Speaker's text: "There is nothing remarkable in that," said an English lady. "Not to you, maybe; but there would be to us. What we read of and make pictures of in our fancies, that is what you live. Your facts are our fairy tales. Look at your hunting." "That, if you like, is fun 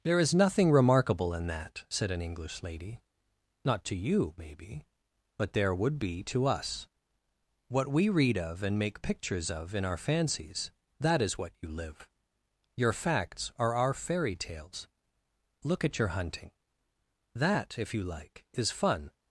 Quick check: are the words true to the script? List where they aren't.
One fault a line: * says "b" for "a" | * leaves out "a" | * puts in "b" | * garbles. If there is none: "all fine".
all fine